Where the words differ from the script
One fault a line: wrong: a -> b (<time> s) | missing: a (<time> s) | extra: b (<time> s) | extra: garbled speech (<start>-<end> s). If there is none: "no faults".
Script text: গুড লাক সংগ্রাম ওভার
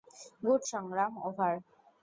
missing: লাক (0.6 s)